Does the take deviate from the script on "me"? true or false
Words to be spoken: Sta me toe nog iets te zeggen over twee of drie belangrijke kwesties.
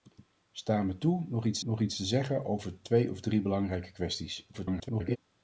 false